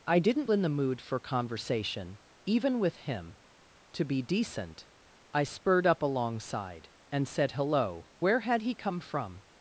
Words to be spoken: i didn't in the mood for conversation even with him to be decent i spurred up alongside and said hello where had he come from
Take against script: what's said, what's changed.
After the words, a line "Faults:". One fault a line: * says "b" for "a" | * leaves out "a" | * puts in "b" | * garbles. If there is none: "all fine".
i didn't in the mood for conversation even with him to be decent i spurred up alongside and said hello where had he come from
Faults:
all fine